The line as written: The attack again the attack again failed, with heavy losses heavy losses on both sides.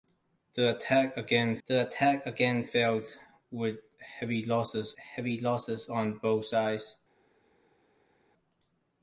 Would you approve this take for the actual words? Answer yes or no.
yes